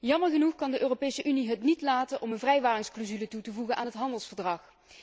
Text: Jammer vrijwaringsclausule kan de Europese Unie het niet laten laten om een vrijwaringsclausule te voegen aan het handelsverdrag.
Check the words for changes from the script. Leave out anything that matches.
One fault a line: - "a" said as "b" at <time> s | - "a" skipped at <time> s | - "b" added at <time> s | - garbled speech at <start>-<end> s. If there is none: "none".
- "vrijwaringsclausule" said as "genoeg" at 0.3 s
- "laten" skipped at 2.2 s
- "toe" added at 3.3 s